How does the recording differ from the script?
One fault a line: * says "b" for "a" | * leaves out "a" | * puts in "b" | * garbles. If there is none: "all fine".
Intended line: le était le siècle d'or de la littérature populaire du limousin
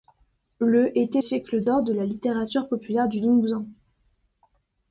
* leaves out "le"